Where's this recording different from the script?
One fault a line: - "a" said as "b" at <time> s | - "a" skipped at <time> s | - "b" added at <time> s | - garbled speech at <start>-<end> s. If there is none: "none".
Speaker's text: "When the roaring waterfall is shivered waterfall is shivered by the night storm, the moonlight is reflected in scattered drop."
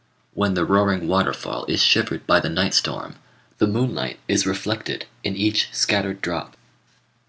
- "waterfall is shivered" skipped at 2.2 s
- "each" added at 5.4 s